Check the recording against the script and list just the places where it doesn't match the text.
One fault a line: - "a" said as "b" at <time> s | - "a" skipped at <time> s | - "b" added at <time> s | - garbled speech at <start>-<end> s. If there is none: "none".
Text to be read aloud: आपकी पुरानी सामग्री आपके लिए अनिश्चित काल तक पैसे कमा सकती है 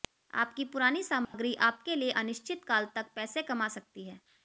none